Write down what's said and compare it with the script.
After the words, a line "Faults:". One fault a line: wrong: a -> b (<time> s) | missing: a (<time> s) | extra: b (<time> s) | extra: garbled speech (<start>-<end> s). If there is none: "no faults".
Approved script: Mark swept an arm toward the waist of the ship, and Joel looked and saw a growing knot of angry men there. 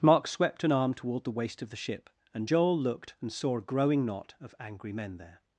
Mark swept an arm toward the waist of the ship, and Joel looked and saw a growing knot of angry men there.
Faults:
no faults